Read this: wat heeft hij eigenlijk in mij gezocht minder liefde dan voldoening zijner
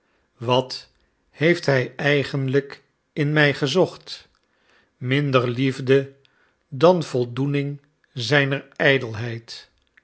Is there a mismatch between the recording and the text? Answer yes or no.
no